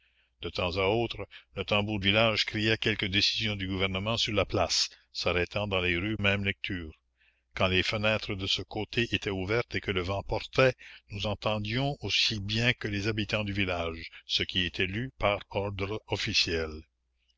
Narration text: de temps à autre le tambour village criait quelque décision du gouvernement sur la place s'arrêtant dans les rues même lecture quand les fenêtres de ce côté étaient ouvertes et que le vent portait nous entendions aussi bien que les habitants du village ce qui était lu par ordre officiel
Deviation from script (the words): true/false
false